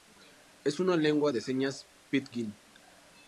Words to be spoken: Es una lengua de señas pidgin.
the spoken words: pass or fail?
pass